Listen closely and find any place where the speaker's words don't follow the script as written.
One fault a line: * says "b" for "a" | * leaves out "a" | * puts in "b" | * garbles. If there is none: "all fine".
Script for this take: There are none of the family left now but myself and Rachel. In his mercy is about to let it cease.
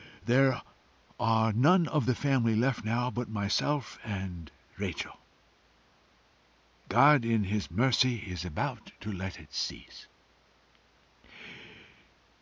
* puts in "God"